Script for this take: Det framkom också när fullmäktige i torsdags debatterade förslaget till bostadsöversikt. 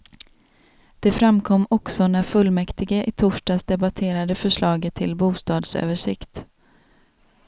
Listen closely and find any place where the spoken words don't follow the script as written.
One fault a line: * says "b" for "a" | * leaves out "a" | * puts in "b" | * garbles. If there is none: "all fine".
all fine